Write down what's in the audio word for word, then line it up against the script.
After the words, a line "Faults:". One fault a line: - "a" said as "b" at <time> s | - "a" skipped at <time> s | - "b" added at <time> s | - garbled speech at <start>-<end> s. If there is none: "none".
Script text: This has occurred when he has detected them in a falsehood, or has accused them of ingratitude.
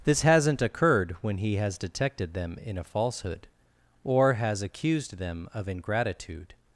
This hasn't occurred when he has detected them in a falsehood, or has accused them of ingratitude.
Faults:
- "has" said as "hasn't" at 0.2 s